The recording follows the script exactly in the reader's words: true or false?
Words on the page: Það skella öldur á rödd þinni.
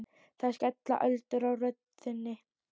true